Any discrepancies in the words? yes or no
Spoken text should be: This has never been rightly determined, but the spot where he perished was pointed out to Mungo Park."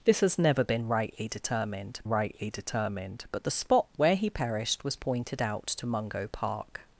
yes